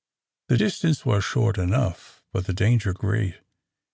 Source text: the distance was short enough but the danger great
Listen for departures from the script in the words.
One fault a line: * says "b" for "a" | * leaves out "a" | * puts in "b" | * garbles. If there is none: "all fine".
all fine